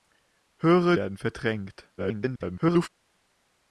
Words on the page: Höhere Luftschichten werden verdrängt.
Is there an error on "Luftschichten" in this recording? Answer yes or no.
yes